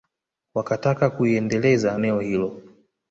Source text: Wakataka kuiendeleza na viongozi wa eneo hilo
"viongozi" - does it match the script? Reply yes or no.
no